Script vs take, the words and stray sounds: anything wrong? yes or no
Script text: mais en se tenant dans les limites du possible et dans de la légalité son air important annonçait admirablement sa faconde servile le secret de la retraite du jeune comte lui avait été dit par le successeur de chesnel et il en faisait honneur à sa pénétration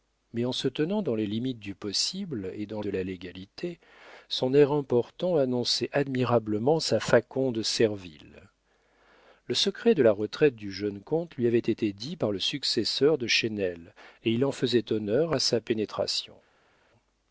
no